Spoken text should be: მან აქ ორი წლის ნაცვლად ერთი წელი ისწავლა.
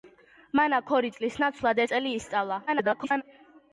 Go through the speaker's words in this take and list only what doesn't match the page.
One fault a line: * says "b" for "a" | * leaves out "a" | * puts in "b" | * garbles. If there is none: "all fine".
* leaves out "ერთი"
* garbles